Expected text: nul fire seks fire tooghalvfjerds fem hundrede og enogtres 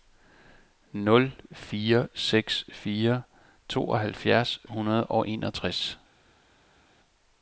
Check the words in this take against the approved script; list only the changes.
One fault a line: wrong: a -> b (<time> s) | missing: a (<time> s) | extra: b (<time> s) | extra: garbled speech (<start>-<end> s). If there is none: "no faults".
missing: fem (4.6 s)